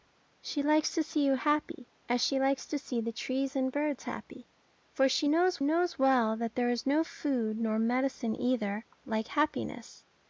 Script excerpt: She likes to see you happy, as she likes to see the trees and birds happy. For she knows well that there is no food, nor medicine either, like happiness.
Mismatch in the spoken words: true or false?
true